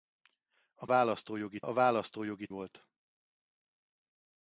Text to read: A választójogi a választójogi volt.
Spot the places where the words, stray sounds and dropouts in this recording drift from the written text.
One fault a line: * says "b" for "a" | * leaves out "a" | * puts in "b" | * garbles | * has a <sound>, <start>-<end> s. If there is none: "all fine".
all fine